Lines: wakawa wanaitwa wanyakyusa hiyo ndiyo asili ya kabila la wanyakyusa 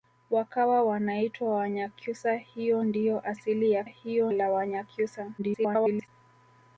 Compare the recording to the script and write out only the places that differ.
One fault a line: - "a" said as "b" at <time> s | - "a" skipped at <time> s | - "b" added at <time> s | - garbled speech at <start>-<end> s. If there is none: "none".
- "kabila" said as "hiyo" at 3.8 s
- garbled speech at 5.4-6.1 s